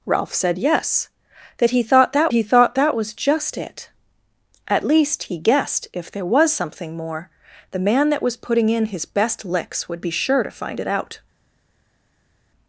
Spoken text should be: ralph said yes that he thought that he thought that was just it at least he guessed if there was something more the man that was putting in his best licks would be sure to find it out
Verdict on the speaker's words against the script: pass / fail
pass